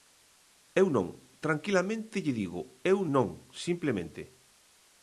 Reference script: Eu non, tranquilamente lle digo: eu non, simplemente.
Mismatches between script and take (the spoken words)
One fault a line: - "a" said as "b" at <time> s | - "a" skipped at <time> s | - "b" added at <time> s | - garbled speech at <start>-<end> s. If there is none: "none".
none